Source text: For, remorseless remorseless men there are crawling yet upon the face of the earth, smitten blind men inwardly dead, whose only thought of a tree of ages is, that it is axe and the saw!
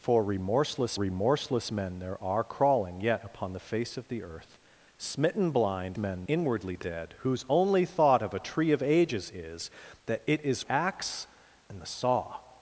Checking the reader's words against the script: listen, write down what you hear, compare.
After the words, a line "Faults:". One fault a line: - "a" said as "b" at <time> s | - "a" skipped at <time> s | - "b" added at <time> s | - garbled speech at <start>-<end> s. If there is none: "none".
For, remorseless remorseless men there are crawling yet upon the face of the earth, smitten blind men inwardly dead, whose only thought of a tree of ages is, that it is axe and the saw!
Faults:
none